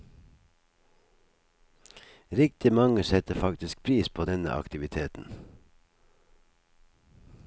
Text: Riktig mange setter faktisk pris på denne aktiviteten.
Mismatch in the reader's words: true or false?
false